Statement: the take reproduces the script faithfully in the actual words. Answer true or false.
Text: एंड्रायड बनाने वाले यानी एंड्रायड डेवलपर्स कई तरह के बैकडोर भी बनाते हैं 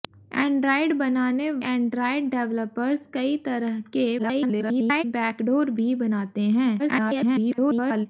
false